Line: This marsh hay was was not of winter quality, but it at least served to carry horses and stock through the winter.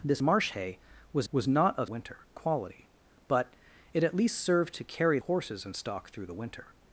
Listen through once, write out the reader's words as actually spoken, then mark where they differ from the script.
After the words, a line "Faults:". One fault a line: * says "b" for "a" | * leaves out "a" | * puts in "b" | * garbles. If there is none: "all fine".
This marsh hay was was not of winter quality, but it at least served to carry horses and stock through the winter.
Faults:
all fine